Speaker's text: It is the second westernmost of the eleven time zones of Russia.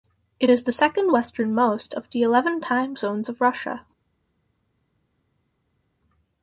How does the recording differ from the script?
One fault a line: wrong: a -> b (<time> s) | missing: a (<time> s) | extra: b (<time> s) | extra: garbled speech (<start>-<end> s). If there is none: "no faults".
no faults